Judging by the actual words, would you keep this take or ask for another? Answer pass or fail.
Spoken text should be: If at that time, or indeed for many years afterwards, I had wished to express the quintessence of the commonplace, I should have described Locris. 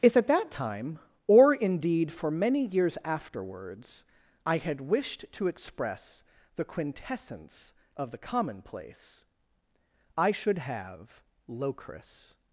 fail